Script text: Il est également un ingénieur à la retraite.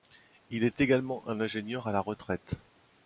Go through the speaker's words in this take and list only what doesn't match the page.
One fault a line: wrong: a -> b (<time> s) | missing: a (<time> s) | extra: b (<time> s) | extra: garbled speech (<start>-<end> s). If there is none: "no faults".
no faults